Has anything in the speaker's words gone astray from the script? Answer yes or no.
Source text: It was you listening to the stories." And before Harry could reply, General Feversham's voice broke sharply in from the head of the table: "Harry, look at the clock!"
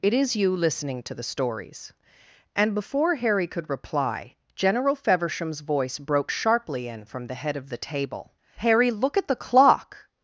yes